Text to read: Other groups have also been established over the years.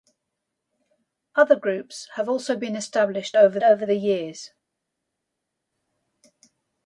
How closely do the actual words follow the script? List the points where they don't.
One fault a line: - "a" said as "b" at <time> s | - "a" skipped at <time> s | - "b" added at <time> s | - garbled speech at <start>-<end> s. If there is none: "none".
- "over" added at 3.6 s